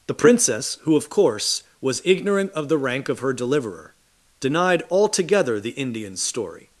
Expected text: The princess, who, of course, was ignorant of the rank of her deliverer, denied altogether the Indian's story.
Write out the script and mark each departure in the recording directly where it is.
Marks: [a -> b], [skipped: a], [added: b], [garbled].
The princess, who, of course, was ignorant of the rank of her deliverer, denied altogether the Indian's story.